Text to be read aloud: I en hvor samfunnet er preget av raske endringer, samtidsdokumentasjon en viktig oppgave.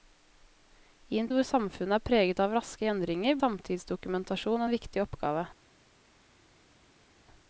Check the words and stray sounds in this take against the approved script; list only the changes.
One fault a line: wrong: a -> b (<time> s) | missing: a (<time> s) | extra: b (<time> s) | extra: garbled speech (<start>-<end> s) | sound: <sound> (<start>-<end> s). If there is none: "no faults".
no faults